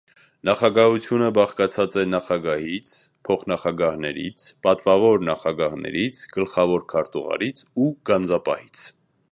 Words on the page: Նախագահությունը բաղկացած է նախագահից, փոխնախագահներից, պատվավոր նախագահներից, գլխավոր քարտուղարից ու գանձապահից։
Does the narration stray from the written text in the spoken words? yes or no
no